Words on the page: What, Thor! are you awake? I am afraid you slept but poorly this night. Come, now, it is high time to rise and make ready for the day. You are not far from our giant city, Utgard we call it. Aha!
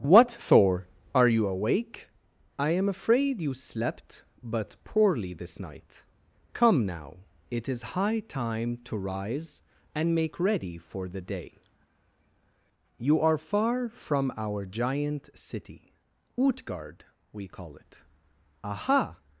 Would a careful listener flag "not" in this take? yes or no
yes